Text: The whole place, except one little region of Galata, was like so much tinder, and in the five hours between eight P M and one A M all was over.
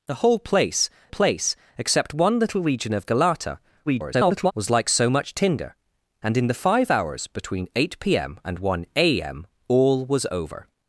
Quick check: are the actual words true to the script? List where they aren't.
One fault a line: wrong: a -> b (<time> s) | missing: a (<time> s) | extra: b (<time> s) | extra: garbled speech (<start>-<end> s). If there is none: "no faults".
extra: place (1.1 s)
extra: garbled speech (3.9-4.5 s)